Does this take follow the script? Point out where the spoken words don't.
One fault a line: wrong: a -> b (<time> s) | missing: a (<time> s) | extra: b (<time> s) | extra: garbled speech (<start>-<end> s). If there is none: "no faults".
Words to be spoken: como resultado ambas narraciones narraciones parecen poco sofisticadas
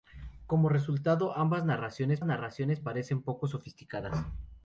no faults